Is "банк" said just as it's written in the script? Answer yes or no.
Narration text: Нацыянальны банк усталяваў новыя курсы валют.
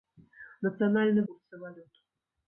no